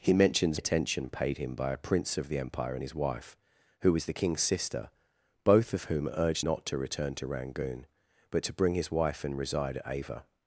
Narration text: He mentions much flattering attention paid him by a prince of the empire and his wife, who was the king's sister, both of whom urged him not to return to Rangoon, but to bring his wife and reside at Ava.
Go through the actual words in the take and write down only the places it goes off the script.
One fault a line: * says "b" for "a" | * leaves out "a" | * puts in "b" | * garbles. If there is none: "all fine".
* leaves out "much flattering"
* leaves out "him"